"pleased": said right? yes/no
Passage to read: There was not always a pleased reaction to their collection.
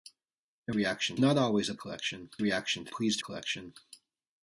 no